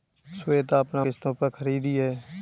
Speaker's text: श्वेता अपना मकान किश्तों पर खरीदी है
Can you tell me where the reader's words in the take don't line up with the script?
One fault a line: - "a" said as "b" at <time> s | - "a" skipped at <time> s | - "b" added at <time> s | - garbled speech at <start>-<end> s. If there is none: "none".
- "मकान" skipped at 1.0 s